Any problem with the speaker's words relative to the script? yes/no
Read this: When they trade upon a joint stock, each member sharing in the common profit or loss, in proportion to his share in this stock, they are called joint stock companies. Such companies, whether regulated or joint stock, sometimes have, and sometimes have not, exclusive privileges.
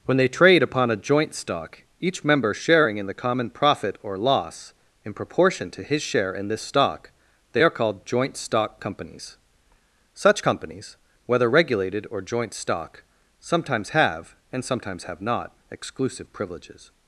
no